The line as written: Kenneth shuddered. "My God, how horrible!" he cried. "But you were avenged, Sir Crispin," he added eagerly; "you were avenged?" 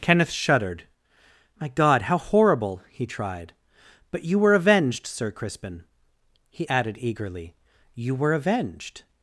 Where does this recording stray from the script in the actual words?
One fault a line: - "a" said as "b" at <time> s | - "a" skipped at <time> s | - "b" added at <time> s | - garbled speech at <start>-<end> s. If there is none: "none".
- "cried" said as "tried" at 3.0 s